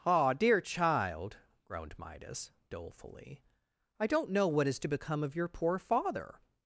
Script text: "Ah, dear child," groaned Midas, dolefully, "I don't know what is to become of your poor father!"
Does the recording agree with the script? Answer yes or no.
yes